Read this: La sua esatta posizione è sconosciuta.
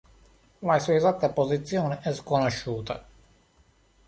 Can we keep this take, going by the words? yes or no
yes